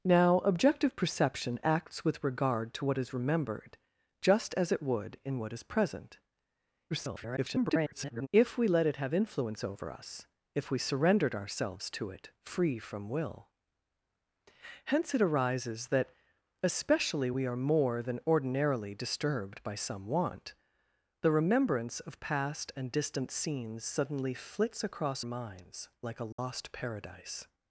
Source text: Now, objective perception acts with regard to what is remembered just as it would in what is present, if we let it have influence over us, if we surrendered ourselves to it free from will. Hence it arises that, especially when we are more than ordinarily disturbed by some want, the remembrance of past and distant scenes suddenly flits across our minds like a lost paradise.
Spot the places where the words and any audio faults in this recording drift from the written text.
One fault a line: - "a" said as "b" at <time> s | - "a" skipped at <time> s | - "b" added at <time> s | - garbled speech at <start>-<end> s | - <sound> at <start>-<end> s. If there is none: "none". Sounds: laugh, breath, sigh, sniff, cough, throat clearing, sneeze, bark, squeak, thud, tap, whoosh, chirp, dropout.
- garbled speech at 6.9-8.3 s
- "when" skipped at 17.3 s
- "our" skipped at 25.2 s
- dropout at 26.3-26.4 s